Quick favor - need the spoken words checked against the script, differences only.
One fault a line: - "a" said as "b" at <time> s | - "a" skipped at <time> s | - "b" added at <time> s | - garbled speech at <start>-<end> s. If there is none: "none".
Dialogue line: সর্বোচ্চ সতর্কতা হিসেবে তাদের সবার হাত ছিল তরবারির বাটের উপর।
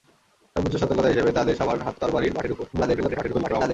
- "ছিল" skipped at 1.9 s
- garbled speech at 2.7-3.7 s